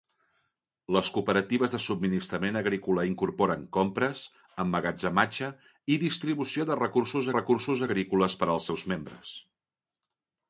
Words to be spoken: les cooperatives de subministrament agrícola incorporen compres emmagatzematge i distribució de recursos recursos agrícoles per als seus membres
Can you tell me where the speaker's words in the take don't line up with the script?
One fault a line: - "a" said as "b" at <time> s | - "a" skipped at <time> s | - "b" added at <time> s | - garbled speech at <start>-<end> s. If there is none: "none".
none